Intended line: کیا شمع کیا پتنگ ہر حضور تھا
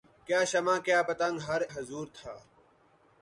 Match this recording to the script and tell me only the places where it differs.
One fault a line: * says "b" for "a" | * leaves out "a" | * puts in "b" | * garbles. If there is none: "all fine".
all fine